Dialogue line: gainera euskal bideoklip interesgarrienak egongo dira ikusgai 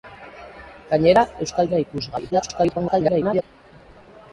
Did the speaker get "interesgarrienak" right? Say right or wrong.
wrong